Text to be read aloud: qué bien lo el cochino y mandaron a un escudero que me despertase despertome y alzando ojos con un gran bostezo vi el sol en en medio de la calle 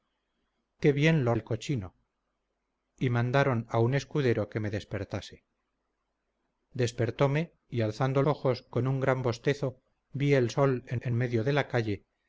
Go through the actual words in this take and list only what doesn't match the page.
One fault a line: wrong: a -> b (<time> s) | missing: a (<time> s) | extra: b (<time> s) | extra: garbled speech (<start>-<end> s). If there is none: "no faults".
no faults